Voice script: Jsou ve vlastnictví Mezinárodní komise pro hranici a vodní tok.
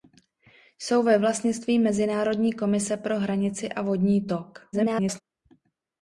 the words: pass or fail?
fail